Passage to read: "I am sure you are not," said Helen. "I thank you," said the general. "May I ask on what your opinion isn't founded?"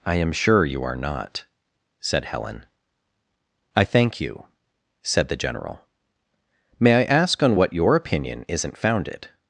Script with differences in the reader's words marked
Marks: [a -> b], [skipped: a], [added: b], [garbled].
"I am sure you are not," said Helen. "I thank you," said the general. "May I ask on what your opinion isn't founded?"